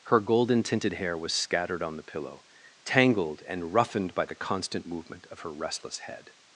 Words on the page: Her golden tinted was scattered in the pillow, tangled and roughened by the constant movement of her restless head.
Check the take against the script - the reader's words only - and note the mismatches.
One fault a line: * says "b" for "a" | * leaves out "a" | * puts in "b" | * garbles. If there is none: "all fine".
* puts in "hair"
* says "on" for "in"